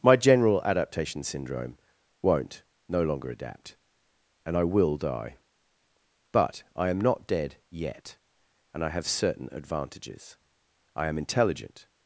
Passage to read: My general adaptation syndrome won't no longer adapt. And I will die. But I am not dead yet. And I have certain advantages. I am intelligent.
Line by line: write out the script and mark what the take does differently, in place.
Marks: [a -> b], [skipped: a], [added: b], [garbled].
My general adaptation syndrome won't no longer adapt. And I will die. But I am not dead yet. And I have certain advantages. I am intelligent.